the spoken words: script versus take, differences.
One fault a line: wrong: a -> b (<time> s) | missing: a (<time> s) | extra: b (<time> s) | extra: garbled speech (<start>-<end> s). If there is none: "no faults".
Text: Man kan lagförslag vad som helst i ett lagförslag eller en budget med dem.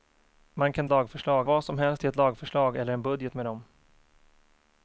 no faults